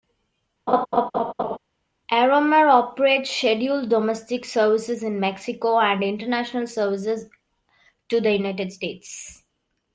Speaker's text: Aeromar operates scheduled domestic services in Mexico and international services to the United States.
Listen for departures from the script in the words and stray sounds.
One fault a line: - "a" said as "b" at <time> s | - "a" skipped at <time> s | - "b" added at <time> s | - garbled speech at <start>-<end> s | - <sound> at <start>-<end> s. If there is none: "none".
- laugh at 0.7-1.6 s